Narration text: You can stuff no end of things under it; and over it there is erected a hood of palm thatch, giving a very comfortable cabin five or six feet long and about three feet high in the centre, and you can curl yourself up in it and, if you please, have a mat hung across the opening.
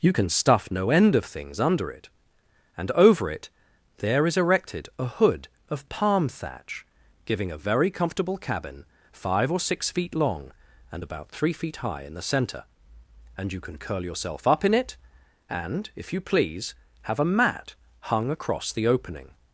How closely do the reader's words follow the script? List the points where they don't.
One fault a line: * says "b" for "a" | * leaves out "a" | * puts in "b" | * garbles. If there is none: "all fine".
all fine